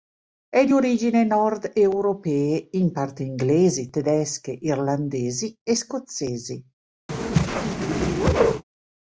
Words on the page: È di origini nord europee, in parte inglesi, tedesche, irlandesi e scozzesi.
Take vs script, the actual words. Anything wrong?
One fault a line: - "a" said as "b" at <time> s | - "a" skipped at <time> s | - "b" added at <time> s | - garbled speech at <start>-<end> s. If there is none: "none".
none